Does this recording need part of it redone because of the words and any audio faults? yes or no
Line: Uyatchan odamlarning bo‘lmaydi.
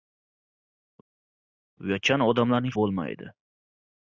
no